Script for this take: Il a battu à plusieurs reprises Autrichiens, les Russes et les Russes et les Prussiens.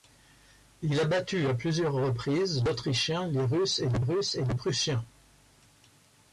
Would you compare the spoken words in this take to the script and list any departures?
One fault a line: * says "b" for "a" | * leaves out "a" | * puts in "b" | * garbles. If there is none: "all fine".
all fine